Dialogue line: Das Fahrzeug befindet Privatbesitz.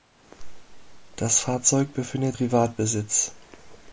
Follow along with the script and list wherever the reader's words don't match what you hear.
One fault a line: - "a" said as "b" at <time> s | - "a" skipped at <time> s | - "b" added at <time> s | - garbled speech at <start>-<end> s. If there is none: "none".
none